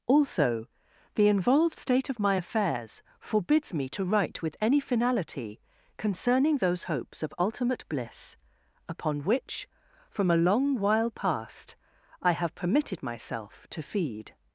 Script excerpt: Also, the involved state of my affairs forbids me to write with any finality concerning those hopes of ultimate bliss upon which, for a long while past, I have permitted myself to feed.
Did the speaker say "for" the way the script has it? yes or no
no